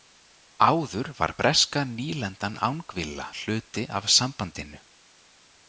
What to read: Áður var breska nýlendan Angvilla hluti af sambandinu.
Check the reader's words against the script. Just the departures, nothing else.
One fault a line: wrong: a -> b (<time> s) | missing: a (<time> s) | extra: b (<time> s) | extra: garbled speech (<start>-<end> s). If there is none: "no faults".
no faults